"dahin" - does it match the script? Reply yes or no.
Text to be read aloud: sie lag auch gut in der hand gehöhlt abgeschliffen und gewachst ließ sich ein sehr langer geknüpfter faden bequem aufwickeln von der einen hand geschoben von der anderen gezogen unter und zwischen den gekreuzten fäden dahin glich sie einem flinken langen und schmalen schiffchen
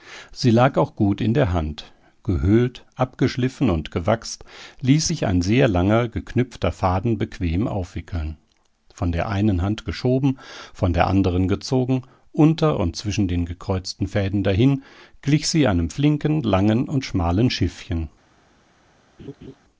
yes